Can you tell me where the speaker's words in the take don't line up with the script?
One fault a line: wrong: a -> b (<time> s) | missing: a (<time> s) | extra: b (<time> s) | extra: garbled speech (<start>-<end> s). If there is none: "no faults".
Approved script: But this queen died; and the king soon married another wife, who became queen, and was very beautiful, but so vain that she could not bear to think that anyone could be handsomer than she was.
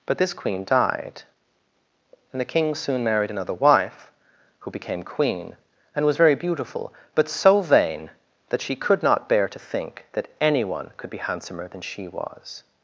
no faults